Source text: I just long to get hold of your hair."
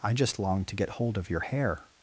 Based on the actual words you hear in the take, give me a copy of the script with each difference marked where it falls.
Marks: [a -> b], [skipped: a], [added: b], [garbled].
I just long to get hold of your hair."